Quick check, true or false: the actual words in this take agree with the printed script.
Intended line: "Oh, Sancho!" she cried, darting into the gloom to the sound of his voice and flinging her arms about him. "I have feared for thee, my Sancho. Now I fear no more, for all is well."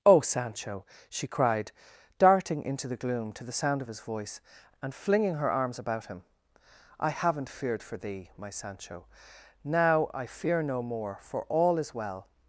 false